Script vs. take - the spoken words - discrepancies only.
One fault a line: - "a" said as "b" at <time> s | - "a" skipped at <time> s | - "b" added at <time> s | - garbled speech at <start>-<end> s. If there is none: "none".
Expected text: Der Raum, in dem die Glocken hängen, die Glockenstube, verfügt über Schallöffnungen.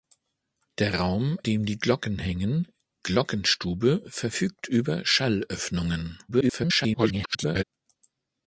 - "in" skipped at 1.4 s
- "die" skipped at 2.7 s
- garbled speech at 6.3-7.6 s